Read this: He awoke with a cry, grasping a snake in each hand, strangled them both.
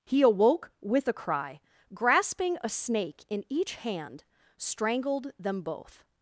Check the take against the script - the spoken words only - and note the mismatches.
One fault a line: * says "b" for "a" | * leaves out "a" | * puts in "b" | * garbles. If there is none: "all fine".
all fine